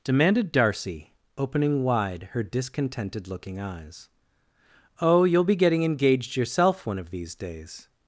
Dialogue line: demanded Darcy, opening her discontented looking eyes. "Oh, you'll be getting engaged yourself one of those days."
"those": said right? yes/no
no